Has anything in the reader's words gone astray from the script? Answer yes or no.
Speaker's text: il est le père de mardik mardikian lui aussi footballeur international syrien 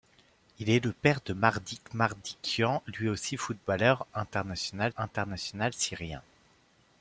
yes